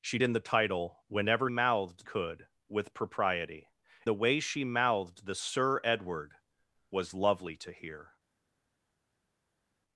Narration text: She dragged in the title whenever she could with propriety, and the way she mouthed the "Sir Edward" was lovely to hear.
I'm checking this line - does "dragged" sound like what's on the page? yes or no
no